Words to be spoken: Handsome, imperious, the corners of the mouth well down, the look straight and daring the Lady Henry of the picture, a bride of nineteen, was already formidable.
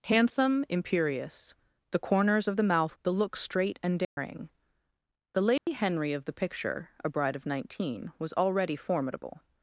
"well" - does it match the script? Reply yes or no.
no